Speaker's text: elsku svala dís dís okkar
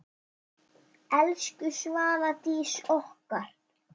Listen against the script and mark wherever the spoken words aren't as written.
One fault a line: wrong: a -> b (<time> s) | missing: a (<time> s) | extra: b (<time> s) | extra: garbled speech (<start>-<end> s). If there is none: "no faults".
missing: dís (2.7 s)